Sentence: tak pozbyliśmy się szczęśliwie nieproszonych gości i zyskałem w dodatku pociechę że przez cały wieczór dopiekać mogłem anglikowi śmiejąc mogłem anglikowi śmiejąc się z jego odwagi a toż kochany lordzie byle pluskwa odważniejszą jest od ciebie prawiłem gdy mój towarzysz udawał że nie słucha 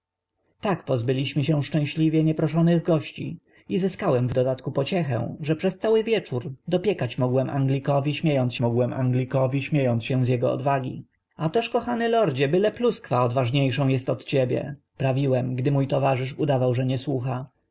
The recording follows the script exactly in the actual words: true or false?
true